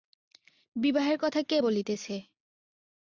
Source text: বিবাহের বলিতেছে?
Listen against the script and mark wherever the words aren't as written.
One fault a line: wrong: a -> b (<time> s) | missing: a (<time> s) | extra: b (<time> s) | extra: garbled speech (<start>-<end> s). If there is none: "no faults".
extra: কথা কে (1.2 s)